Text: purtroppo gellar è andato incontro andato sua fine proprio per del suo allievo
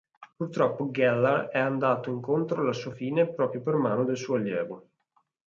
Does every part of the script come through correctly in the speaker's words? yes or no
no